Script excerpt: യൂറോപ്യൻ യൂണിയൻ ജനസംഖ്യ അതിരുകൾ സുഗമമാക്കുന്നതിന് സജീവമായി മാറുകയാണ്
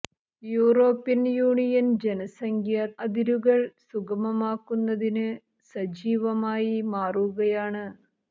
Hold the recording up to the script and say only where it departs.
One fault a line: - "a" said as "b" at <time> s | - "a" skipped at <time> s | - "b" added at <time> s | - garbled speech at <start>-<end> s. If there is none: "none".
none